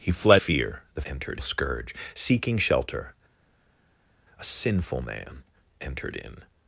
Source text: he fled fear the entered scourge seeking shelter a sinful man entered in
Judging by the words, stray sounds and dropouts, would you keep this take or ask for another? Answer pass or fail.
pass